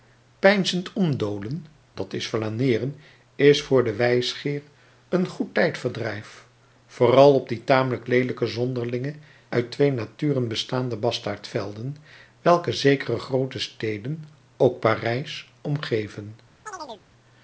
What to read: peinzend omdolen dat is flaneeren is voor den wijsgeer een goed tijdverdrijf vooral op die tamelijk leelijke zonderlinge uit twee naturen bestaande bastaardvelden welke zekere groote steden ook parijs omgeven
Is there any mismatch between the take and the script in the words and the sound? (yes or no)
yes